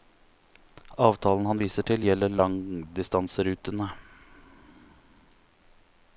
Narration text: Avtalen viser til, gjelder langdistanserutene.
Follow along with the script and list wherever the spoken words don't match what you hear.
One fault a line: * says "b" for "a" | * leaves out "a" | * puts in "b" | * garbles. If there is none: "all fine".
* puts in "han"